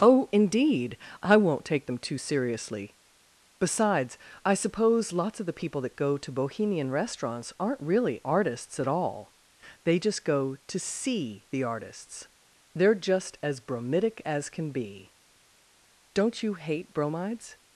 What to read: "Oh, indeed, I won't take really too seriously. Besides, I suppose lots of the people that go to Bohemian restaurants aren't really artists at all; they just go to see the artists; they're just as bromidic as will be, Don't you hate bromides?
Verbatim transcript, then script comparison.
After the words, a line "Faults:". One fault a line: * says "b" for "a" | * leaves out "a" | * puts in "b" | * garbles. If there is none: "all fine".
"Oh, indeed, I won't take them too seriously. Besides, I suppose lots of the people that go to Bohemian restaurants aren't really artists at all; they just go to see the artists; they're just as bromidic as can be, Don't you hate bromides?
Faults:
* says "them" for "really"
* says "can" for "will"